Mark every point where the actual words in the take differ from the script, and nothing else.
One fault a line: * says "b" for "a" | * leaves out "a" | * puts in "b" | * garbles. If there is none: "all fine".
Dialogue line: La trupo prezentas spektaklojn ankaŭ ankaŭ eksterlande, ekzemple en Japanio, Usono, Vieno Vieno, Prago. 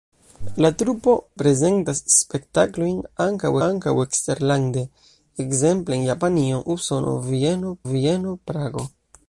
all fine